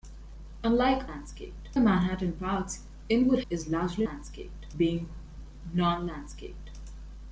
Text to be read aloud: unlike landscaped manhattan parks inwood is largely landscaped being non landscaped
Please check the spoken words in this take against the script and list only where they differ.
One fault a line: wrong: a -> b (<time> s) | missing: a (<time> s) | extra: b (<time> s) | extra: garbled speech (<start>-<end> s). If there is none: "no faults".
no faults